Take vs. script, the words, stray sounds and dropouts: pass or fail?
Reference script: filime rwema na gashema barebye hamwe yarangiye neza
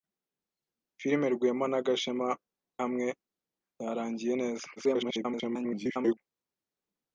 fail